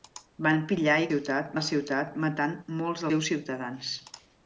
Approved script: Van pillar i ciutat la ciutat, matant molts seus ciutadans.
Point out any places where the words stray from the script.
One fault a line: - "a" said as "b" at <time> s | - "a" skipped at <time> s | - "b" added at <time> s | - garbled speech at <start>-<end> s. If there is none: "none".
none